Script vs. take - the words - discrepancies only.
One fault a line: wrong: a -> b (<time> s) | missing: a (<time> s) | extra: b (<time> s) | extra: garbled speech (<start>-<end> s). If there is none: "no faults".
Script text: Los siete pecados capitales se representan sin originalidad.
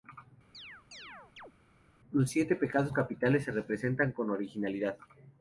wrong: sin -> con (4.1 s)